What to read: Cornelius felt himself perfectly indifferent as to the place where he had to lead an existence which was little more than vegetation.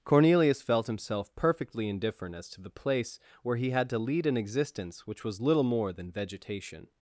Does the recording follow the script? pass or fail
pass